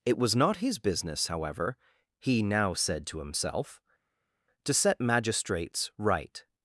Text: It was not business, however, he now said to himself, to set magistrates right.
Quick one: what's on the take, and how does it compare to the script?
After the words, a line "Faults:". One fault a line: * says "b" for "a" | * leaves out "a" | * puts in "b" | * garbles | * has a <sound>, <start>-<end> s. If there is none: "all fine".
It was not his business, however, he now said to himself, to set magistrates right.
Faults:
* puts in "his"